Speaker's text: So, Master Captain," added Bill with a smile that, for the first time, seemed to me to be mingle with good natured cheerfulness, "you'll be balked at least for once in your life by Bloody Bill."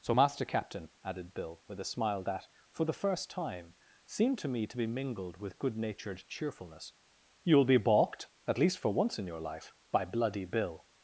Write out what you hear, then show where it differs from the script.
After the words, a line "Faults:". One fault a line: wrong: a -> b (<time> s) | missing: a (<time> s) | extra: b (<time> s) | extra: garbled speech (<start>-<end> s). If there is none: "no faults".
So, Master Captain," added Bill with a smile that, for the first time, seemed to me to be mingled with good natured cheerfulness, "you'll be balked at least for once in your life by Bloody Bill."
Faults:
wrong: mingle -> mingled (4.9 s)